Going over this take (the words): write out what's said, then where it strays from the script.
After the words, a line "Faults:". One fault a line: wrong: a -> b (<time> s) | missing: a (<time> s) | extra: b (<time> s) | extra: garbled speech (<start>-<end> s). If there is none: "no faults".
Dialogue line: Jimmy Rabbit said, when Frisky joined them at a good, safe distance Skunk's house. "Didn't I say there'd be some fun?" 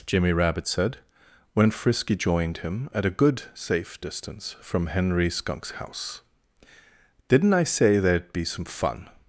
Jimmy Rabbit said, when Frisky joined him at a good, safe distance from Henry Skunk's house. "Didn't I say there'd be some fun?"
Faults:
wrong: them -> him (2.6 s)
extra: from Henry (4.6 s)